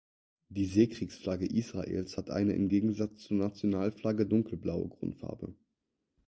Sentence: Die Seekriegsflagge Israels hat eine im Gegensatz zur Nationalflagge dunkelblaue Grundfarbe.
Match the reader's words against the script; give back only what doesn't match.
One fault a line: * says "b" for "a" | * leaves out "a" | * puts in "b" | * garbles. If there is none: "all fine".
all fine